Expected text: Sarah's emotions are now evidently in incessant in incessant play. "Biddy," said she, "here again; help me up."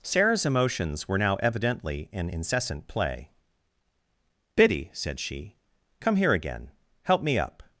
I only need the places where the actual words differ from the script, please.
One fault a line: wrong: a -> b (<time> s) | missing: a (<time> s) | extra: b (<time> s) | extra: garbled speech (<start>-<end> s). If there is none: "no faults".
wrong: are -> were (1.1 s)
missing: in incessant (2.9 s)
extra: come (6.0 s)